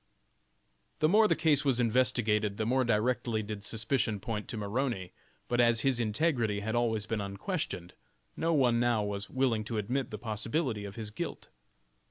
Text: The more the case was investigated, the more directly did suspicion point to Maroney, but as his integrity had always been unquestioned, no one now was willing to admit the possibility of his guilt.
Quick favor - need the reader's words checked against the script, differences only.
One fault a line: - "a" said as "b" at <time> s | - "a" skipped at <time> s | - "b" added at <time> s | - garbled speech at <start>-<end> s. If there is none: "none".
none